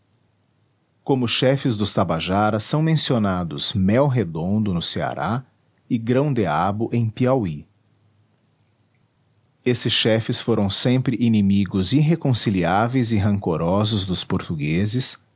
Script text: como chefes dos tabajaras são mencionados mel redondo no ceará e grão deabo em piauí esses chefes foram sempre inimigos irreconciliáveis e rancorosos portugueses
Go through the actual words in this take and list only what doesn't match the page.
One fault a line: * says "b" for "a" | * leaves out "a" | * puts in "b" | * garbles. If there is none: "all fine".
* puts in "dos"